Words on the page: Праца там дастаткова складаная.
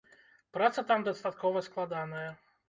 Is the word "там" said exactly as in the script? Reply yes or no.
yes